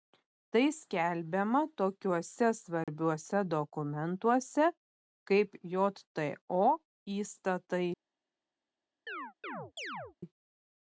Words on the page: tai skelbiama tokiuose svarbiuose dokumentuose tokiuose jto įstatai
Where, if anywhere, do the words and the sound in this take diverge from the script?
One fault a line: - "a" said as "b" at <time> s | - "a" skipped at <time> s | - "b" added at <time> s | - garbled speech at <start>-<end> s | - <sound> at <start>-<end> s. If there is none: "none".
- dropout at 2.8-2.9 s
- "tokiuose" said as "kaip" at 5.3 s
- chirp at 9.1-10.2 s